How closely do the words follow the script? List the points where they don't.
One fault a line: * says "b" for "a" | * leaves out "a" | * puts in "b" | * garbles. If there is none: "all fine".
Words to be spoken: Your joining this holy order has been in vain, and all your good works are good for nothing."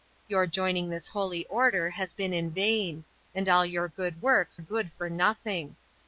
* leaves out "are"